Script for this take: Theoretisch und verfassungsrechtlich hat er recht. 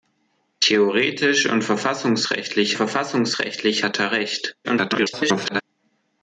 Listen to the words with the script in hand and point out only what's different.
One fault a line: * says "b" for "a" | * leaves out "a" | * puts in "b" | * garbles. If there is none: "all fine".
* puts in "verfassungsrechtlich"
* garbles